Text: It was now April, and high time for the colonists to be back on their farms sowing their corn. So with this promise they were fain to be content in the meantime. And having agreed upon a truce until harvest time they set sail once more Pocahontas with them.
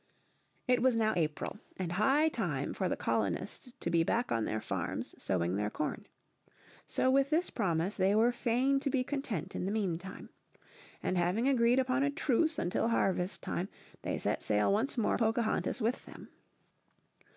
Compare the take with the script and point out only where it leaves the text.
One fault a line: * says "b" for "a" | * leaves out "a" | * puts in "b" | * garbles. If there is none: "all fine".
all fine